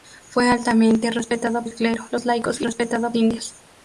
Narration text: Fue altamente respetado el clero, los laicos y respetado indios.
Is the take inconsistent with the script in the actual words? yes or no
no